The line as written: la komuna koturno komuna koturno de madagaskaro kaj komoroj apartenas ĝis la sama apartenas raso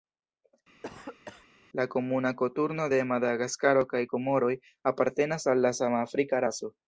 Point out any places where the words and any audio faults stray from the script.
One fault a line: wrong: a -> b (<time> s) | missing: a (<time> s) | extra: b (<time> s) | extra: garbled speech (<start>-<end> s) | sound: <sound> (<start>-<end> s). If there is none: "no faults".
sound: cough (0.8-1.5 s)
missing: komuna koturno (2.9 s)
wrong: ĝis -> al (5.5 s)
wrong: apartenas -> afrika (6.1 s)